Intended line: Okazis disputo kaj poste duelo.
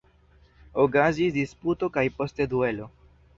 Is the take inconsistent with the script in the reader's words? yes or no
no